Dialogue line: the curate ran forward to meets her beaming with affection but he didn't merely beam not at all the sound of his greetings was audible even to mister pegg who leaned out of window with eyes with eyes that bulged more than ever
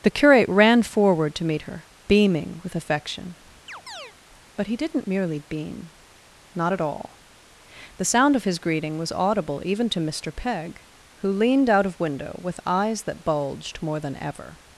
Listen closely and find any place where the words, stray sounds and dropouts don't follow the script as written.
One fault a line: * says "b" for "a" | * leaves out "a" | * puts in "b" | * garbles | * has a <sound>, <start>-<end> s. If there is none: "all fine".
* says "meet" for "meets"
* has a chirp, 3.7-4.1 s
* says "greeting" for "greetings"
* leaves out "with eyes"